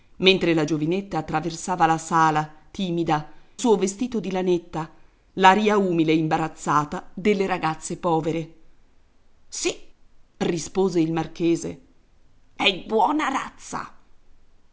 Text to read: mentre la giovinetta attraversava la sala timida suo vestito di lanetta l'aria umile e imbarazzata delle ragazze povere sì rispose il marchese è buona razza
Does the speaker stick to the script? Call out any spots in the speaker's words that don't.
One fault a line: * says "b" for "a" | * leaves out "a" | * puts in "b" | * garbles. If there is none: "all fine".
all fine